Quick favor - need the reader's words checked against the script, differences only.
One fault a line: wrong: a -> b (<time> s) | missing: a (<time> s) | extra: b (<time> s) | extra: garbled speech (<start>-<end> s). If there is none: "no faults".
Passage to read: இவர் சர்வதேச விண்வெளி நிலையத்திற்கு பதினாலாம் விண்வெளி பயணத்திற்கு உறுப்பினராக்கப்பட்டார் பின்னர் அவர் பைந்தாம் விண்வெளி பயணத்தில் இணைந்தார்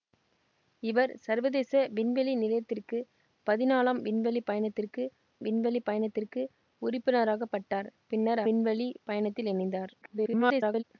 extra: விண்வெளி பயணத்திற்கு (5.4 s)
missing: அவர் பைந்தாம் (8.4 s)
extra: garbled speech (10.0-10.8 s)